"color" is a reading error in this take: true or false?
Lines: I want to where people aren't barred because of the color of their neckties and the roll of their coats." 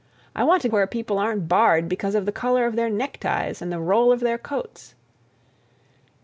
false